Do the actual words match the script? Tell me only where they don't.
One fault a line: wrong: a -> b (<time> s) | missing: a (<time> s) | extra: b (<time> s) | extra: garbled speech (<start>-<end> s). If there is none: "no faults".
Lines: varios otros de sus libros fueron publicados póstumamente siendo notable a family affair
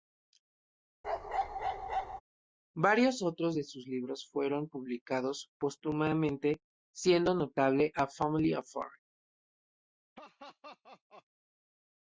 no faults